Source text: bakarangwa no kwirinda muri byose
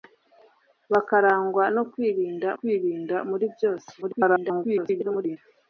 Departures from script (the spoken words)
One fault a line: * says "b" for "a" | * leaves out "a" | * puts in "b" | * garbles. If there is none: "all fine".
* puts in "kwirinda"
* garbles